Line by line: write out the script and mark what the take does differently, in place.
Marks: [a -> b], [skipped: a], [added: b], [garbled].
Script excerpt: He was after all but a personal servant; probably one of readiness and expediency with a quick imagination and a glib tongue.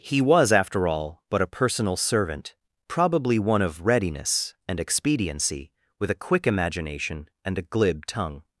He was after all but a personal servant; probably one of readiness and expediency with a quick imagination and a glib tongue.